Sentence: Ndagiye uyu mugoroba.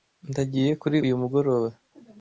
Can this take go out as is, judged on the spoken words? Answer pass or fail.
fail